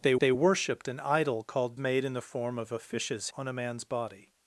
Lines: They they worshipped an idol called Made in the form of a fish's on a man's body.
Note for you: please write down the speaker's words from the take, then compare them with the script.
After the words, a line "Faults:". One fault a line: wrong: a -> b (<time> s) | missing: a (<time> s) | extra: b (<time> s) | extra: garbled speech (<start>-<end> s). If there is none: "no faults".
They they worshipped an idol called Made in the form of a fish's on a man's body.
Faults:
no faults